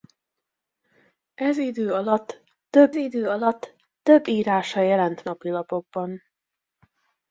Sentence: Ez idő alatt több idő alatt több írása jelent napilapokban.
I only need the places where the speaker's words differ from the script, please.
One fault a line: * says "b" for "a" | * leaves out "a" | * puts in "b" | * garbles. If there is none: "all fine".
all fine